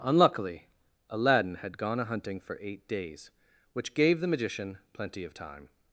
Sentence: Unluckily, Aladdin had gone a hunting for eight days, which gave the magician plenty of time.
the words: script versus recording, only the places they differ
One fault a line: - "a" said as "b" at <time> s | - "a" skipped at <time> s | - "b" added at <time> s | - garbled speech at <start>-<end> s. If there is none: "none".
none